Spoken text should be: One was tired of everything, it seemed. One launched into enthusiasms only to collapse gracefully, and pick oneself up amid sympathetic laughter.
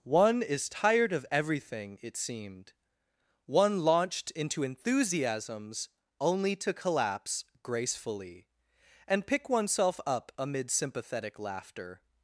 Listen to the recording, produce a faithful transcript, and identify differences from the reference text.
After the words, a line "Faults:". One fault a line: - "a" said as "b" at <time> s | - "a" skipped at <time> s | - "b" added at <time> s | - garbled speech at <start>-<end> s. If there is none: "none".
One is tired of everything, it seemed. One launched into enthusiasms only to collapse gracefully, and pick oneself up amid sympathetic laughter.
Faults:
- "was" said as "is" at 0.4 s